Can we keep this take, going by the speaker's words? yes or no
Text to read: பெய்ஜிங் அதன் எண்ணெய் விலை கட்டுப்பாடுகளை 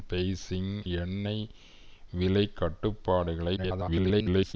no